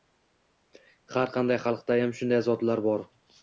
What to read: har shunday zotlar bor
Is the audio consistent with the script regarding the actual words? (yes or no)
no